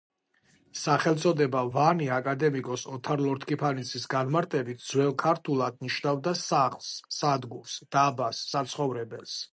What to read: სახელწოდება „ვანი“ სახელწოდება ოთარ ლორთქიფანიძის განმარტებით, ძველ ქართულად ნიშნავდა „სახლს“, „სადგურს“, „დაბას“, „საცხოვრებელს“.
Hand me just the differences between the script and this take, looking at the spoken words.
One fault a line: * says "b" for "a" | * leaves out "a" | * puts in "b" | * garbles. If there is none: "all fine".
* says "აკადემიკოს" for "სახელწოდება"